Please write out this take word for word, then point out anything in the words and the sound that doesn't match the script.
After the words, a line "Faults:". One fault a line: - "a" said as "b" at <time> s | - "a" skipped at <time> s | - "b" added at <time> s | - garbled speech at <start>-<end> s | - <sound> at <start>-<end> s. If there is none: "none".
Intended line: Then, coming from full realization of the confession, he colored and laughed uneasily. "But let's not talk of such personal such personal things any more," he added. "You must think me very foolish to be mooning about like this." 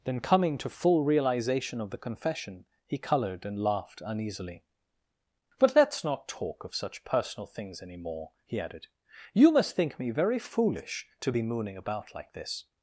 Then, coming to full realization of the confession, he colored and laughed uneasily. "But let's not talk of such personal things any more," he added. "You must think me very foolish to be mooning about like this."
Faults:
- "from" said as "to" at 0.6 s
- "such personal" skipped at 7.5 s